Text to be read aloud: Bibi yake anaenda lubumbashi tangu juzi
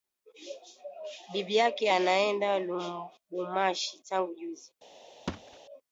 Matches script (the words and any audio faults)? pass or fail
fail